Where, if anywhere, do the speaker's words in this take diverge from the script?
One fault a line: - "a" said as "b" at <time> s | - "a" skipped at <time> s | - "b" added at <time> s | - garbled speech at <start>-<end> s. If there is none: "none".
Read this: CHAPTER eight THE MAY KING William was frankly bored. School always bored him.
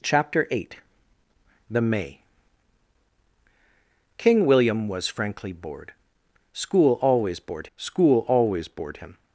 - "school always bored" added at 7.7 s